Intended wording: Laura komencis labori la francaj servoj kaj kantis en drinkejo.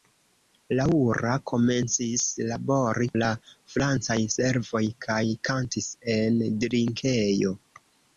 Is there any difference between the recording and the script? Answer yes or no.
no